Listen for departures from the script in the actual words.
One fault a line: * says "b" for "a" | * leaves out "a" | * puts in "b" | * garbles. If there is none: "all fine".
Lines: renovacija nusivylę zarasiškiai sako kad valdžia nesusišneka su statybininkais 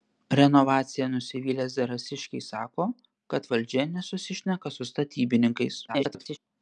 * garbles